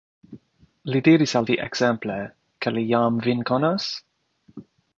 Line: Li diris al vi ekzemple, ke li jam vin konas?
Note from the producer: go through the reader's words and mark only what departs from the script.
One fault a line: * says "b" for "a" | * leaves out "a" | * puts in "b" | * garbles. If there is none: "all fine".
all fine